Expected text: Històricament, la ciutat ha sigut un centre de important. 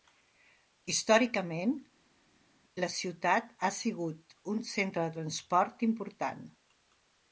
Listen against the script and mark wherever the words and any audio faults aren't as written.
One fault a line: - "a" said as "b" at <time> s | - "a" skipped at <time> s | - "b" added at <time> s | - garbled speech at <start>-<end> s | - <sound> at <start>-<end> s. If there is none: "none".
- "transport" added at 5.1 s